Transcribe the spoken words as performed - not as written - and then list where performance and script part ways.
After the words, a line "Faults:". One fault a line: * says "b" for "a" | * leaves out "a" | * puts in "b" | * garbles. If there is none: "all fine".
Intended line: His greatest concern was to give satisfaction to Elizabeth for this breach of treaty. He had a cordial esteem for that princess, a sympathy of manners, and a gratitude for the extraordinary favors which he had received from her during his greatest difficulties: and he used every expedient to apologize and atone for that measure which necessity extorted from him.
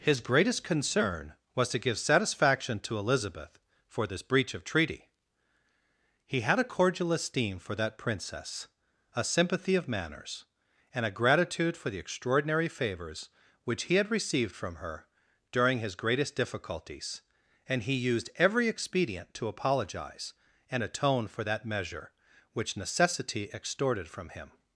His greatest concern was to give satisfaction to Elizabeth for this breach of treaty. He had a cordial esteem for that princess, a sympathy of manners, and a gratitude for the extraordinary favors which he had received from her during his greatest difficulties: and he used every expedient to apologize and atone for that measure which necessity extorted from him.
Faults:
all fine